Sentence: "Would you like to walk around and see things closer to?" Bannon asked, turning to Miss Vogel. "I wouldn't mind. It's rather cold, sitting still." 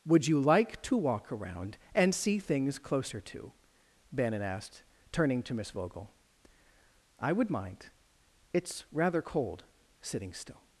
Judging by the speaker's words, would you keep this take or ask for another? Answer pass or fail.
fail